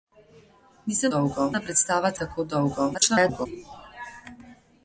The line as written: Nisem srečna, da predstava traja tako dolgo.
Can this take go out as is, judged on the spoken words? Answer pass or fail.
fail